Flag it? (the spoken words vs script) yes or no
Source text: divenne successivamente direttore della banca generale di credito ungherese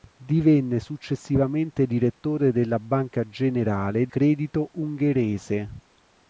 yes